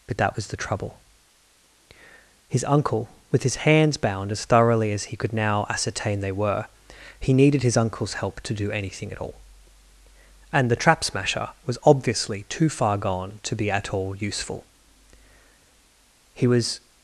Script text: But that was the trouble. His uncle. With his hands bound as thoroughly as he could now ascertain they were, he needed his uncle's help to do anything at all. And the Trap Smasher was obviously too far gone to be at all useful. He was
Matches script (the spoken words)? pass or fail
pass